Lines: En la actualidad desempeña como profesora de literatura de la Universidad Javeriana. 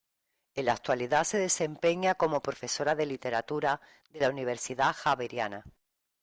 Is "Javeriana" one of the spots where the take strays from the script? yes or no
no